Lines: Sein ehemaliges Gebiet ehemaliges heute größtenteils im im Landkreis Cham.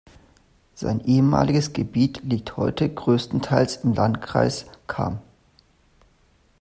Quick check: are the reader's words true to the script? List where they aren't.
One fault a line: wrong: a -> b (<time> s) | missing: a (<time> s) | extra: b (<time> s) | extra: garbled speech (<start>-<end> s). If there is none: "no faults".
wrong: ehemaliges -> liegt (2.2 s)
missing: im (3.9 s)